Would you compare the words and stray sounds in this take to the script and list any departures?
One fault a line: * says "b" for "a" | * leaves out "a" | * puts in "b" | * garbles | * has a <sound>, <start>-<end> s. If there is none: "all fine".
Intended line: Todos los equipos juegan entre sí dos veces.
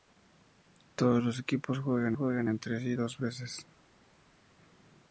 * puts in "juegan"